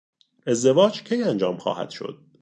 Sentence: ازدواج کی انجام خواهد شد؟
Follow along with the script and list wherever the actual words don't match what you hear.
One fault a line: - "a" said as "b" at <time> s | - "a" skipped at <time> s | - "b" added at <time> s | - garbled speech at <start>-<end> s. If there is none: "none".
none